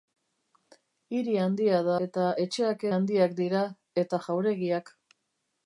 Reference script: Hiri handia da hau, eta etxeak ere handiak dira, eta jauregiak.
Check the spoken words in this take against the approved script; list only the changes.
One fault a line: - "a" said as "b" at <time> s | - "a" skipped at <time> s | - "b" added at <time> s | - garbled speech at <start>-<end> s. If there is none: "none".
- "hau" skipped at 2.0 s
- "ere" skipped at 2.9 s